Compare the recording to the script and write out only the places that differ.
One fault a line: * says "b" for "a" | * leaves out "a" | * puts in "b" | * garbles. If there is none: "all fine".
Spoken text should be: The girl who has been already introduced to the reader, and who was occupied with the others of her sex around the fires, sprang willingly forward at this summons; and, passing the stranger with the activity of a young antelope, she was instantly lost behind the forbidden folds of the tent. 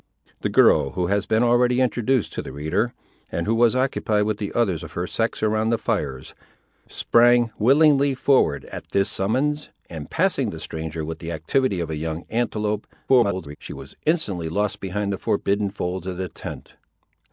* garbles